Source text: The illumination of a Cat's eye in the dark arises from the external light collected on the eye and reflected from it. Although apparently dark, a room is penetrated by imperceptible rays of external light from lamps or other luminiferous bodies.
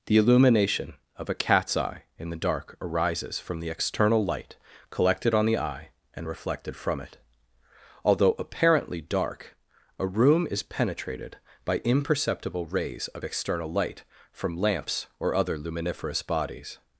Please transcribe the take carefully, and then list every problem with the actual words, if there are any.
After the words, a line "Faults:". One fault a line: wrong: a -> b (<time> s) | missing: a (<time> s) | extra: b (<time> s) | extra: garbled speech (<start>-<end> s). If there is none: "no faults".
The illumination of a Cat's eye in the dark arises from the external light collected on the eye and reflected from it. Although apparently dark, a room is penetrated by imperceptible rays of external light from lamps or other luminiferous bodies.
Faults:
no faults